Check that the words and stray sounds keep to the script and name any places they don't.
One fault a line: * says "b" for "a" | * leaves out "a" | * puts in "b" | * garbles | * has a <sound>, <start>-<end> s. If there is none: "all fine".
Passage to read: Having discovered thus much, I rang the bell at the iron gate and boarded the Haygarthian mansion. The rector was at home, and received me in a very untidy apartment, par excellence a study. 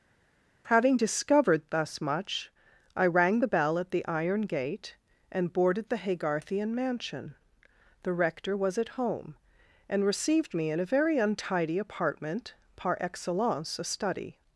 all fine